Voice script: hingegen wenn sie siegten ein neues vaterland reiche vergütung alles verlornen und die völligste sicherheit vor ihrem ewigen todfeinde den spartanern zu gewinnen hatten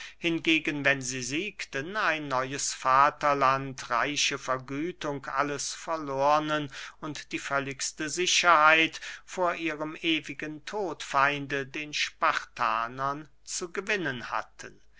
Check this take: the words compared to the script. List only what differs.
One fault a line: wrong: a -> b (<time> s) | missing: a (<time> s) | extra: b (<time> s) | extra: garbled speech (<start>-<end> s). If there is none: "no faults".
no faults